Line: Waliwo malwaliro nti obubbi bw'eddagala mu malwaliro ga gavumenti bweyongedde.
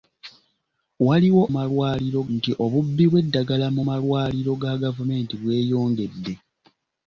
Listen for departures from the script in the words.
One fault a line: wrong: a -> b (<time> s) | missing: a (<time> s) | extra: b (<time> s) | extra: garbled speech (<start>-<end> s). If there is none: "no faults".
no faults